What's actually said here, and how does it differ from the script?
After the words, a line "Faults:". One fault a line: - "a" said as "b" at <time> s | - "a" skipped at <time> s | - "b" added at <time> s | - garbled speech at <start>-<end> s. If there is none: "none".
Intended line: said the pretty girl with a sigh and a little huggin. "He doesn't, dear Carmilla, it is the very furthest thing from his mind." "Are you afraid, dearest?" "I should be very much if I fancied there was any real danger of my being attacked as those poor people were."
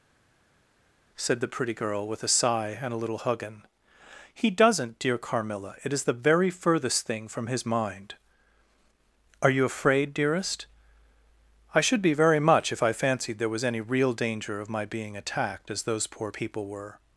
said the pretty girl with a sigh and a little huggin. "He doesn't, dear Carmilla, it is the very furthest thing from his mind." "Are you afraid, dearest?" "I should be very much if I fancied there was any real danger of my being attacked as those poor people were."
Faults:
none